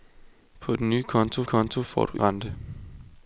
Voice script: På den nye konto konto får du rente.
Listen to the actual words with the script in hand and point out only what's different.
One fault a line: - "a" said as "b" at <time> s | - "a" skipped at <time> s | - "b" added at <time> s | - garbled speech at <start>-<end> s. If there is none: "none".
none